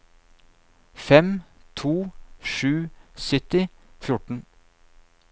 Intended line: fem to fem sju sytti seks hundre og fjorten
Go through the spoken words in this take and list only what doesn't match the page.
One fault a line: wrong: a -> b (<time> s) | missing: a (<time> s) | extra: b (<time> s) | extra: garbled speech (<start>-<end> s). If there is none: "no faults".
missing: fem (1.9 s)
missing: seks hundre (3.6 s)